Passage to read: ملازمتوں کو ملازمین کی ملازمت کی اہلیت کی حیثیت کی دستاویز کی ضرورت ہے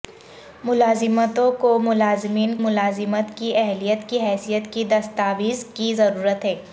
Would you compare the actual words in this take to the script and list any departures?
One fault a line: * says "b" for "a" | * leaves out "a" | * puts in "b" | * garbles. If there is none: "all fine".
* leaves out "کی"